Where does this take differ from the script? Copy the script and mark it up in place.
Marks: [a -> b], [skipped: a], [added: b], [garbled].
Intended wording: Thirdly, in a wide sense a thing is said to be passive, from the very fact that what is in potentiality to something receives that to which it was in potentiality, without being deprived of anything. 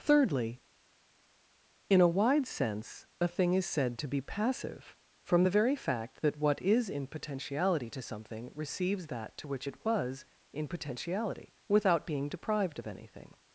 Thirdly, in a wide sense a thing is said to be passive, from the very fact that what is in potentiality to something receives that to which it was in potentiality, without being deprived of anything.